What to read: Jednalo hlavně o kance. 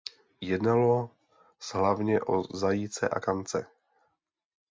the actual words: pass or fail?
fail